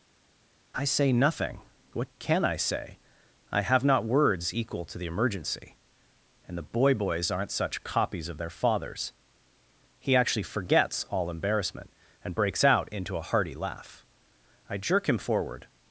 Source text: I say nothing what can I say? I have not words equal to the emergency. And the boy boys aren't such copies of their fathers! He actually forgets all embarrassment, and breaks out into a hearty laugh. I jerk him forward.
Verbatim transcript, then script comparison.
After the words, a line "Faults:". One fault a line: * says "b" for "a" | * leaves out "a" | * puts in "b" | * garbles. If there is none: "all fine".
I say nothing what can I say? I have not words equal to the emergency. And the boy boys aren't such copies of their fathers! He actually forgets all embarrassment, and breaks out into a hearty laugh. I jerk him forward.
Faults:
all fine